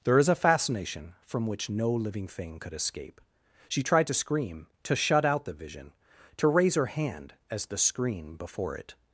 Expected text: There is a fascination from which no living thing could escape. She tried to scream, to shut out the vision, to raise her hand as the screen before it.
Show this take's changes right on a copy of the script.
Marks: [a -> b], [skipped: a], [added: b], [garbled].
There is a fascination from which no living thing could escape. She tried to scream, to shut out the vision, to raise her hand as the screen before it.